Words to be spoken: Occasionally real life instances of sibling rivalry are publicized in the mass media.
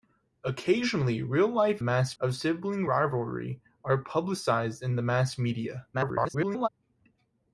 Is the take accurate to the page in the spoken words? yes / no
no